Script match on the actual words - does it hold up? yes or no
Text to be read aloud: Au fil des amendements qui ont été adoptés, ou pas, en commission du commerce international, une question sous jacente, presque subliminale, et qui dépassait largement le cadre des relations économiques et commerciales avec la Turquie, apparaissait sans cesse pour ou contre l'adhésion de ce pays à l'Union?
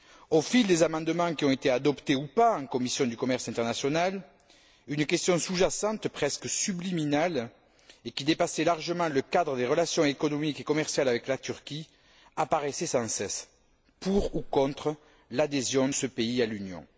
no